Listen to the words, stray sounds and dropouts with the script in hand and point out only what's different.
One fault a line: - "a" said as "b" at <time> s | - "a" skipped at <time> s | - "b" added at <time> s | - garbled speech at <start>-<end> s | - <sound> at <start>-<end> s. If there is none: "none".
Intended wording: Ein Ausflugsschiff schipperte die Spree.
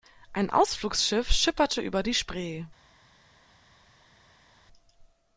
- "über" added at 1.8 s